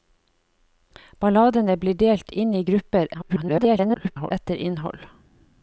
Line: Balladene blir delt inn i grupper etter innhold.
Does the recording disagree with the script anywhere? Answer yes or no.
yes